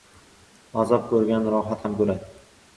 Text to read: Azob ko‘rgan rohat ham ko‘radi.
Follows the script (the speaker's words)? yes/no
yes